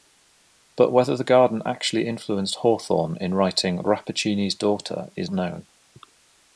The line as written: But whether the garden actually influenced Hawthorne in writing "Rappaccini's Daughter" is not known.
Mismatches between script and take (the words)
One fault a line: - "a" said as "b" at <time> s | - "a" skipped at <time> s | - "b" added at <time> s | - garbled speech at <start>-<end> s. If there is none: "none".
- "not" skipped at 5.3 s